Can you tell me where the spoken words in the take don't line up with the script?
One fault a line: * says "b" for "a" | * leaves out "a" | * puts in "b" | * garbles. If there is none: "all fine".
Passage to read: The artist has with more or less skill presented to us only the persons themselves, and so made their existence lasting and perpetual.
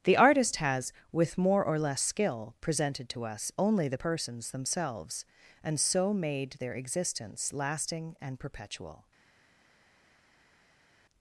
all fine